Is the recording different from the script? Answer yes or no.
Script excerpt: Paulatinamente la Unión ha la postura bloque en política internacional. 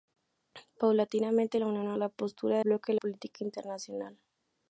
no